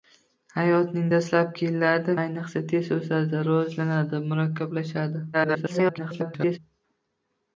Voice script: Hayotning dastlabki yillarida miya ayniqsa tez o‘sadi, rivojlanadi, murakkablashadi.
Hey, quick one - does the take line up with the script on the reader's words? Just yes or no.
no